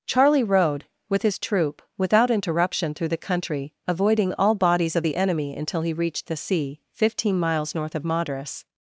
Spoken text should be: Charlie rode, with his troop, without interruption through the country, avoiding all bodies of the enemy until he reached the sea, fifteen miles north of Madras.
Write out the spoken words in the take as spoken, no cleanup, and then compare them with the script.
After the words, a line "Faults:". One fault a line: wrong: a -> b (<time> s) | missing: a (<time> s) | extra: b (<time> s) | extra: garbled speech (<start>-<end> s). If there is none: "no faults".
Charlie rode, with his troop, without interruption through the country, avoiding all bodies of the enemy until he reached the sea, fifteen miles north of Madras.
Faults:
no faults